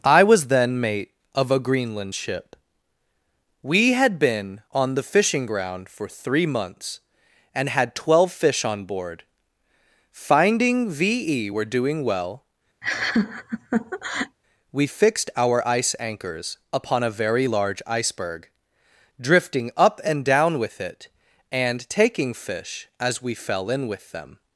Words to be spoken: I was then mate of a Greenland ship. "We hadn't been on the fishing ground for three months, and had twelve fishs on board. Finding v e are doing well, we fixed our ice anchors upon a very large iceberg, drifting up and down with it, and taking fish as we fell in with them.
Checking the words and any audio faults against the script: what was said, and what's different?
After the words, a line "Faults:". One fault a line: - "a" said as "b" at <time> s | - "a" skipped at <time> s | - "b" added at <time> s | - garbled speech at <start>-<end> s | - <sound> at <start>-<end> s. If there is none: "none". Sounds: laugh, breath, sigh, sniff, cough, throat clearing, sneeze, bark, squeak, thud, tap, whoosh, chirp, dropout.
I was then mate of a Greenland ship. "We had been on the fishing ground for three months, and had twelve fish on board. Finding v e were doing well, we fixed our ice anchors upon a very large iceberg, drifting up and down with it, and taking fish as we fell in with them.
Faults:
- "hadn't" said as "had" at 3.9 s
- "fishs" said as "fish" at 8.3 s
- "are" said as "were" at 11.5 s
- laugh at 12.8-14.4 s